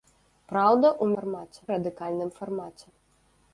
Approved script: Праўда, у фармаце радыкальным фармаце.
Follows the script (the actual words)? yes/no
yes